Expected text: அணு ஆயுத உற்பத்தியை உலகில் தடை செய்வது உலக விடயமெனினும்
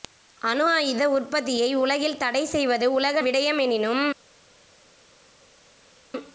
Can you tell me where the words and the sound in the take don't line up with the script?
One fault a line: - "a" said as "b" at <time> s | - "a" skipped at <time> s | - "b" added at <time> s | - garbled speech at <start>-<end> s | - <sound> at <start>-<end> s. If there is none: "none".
none